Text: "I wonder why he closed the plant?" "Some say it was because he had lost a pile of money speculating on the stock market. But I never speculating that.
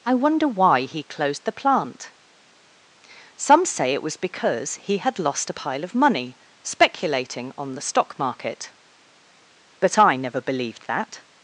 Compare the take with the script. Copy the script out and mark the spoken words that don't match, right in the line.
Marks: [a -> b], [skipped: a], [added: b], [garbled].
"I wonder why he closed the plant?" "Some say it was because he had lost a pile of money speculating on the stock market. But I never [speculating -> believed] that.